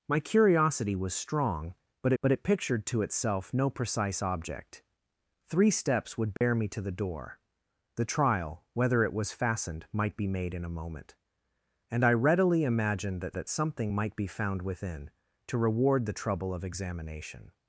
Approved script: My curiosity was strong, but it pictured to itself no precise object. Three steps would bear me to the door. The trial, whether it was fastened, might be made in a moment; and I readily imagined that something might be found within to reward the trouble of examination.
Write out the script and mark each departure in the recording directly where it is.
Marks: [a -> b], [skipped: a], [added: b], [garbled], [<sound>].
My curiosity was strong, but [added: but] it pictured to itself no precise object. Three steps would bear [dropout] me to the door. The trial, whether it was fastened, might be made in a moment; and I readily imagined that [added: that] something might be found within to reward the trouble of examination.